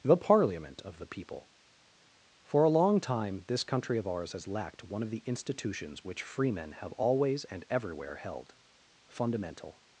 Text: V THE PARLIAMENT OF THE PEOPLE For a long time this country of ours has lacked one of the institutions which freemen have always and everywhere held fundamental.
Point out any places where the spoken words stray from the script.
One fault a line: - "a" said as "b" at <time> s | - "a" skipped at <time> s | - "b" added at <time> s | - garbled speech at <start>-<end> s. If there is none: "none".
- "V" skipped at 0.0 s